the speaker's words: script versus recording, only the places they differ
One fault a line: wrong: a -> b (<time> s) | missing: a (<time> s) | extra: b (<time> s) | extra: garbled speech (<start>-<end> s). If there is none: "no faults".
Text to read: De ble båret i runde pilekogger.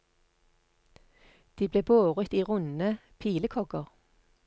no faults